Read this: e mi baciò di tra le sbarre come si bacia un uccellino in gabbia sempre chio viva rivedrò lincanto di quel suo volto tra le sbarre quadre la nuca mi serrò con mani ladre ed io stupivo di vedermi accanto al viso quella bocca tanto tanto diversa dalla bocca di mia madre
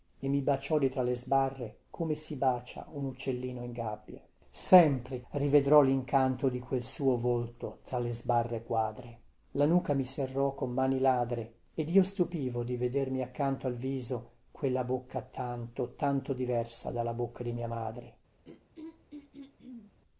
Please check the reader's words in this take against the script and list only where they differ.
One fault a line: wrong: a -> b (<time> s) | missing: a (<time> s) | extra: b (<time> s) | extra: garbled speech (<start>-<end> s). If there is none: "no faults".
missing: chio viva (5.2 s)